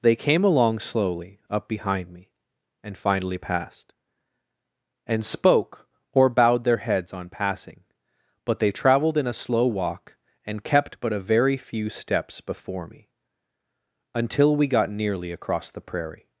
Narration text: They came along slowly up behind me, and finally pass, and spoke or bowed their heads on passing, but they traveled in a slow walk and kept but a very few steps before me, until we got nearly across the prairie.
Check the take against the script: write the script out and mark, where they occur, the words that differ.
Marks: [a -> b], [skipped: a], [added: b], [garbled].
They came along slowly up behind me, and finally [pass, -> passed] and spoke or bowed their heads on passing, but they traveled in a slow walk and kept but a very few steps before me, until we got nearly across the prairie.